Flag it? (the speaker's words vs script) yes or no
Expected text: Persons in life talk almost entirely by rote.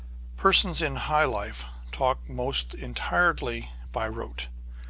yes